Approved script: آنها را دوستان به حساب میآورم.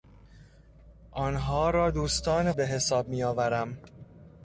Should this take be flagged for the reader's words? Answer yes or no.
no